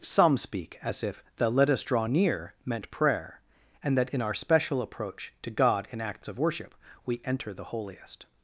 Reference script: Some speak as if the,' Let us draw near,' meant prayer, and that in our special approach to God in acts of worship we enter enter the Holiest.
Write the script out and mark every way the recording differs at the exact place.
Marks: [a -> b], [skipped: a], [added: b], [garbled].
Some speak as if the,' Let us draw near,' meant prayer, and that in our special approach to God in acts of worship we enter [skipped: enter] the Holiest.